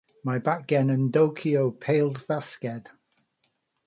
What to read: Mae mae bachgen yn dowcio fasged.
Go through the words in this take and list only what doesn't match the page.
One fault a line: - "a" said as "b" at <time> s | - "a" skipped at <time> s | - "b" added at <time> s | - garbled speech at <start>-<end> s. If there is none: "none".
- "mae" skipped at 0.4 s
- "pêl" added at 1.9 s